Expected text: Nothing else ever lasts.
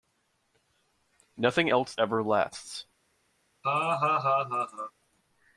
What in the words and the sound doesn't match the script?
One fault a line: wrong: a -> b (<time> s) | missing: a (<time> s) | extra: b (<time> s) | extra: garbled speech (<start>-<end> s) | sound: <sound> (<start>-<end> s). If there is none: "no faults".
sound: laugh (3.6-4.9 s)